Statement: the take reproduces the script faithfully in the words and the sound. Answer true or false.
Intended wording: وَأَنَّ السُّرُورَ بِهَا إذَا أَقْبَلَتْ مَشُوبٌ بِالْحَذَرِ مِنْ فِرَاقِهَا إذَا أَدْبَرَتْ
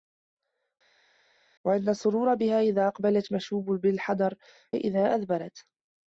false